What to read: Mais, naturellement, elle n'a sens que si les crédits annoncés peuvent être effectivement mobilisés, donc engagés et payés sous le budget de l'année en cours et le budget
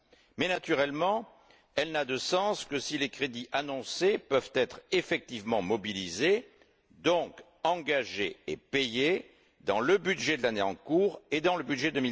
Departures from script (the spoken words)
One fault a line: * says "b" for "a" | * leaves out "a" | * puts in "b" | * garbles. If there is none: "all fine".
* puts in "de"
* says "dans" for "sous"
* puts in "dans"